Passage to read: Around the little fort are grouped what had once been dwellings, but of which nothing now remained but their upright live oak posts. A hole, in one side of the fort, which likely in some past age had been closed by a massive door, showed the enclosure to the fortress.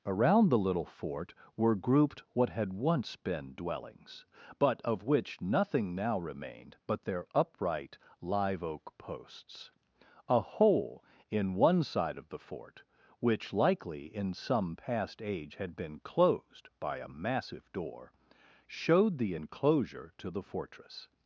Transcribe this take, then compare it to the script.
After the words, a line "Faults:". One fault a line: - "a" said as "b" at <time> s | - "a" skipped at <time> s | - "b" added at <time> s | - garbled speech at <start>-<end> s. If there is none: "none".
Around the little fort were grouped what had once been dwellings, but of which nothing now remained but their upright live oak posts. A hole, in one side of the fort, which likely in some past age had been closed by a massive door, showed the enclosure to the fortress.
Faults:
- "are" said as "were" at 1.6 s